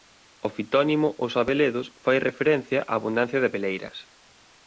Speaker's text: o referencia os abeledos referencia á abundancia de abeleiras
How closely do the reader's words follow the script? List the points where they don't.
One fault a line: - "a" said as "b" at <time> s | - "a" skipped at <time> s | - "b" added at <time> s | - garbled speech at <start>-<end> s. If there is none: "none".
- "referencia" said as "fitónimo" at 0.6 s
- "fai" added at 2.0 s